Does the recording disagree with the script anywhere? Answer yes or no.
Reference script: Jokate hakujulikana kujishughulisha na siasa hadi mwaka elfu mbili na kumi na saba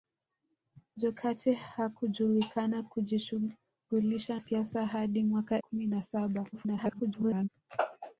yes